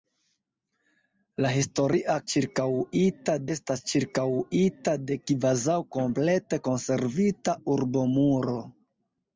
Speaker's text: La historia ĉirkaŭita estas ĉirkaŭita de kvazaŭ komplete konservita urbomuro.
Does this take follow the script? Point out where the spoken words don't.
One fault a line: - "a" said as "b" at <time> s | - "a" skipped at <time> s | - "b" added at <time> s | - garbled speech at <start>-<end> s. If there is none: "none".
none